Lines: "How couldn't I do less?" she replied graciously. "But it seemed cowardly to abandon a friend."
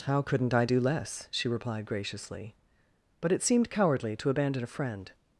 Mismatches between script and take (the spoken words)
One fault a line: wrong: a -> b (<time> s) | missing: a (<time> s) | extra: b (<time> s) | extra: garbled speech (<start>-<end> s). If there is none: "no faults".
no faults